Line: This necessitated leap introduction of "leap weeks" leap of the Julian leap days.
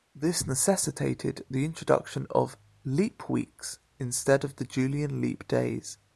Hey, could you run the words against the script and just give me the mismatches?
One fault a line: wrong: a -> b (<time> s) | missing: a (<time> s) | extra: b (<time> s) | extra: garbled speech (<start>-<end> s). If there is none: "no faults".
wrong: leap -> the (1.5 s)
wrong: leap -> instead (4.0 s)